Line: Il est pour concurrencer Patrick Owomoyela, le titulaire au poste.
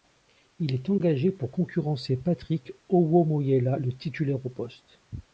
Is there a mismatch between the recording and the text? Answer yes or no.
yes